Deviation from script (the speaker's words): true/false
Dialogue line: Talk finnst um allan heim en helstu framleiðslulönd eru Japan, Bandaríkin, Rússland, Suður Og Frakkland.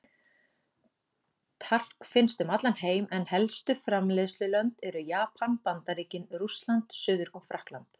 false